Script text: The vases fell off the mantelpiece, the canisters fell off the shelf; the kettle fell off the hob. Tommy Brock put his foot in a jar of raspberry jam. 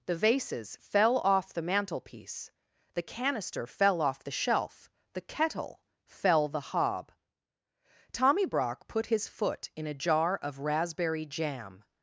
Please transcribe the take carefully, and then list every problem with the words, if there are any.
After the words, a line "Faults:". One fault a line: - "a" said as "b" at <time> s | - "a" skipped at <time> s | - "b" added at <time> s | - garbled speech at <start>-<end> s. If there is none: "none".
The vases fell off the mantelpiece, the canister fell off the shelf; the kettle fell the hob. Tommy Brock put his foot in a jar of raspberry jam.
Faults:
- "canisters" said as "canister" at 3.0 s
- "off" skipped at 6.5 s